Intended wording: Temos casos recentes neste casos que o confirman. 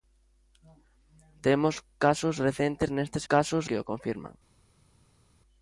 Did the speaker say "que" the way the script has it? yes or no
yes